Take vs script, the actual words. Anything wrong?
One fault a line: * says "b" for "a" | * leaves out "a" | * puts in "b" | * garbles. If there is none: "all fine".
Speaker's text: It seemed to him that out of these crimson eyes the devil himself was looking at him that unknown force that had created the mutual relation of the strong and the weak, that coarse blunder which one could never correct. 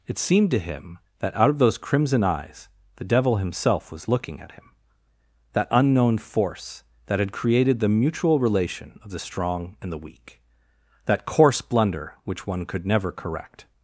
* says "those" for "these"